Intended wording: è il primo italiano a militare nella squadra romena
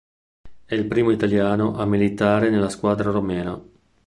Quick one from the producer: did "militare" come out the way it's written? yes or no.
yes